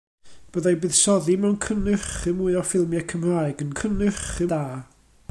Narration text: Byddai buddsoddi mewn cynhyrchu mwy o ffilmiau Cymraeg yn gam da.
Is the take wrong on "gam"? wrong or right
wrong